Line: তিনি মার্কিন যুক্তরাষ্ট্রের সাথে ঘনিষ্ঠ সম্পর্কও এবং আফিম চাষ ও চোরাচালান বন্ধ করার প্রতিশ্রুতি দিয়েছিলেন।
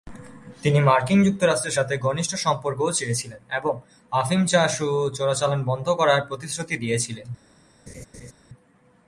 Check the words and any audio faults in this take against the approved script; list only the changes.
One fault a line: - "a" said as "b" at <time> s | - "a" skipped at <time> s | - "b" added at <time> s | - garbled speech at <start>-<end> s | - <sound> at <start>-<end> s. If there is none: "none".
- "চেয়েছিলেন" added at 3.0 s
- laugh at 7.9-8.3 s